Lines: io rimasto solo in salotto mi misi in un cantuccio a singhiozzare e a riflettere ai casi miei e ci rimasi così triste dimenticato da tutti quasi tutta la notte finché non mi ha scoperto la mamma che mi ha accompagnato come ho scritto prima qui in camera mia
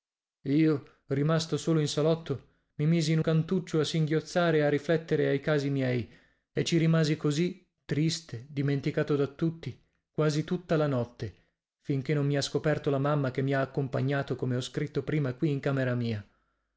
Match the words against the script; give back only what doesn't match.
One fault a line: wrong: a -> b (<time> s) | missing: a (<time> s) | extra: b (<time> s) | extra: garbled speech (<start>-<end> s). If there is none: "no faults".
missing: un (3.2 s)